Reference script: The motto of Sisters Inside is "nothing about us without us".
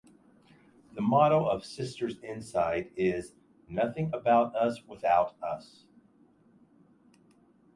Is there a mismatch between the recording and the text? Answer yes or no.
no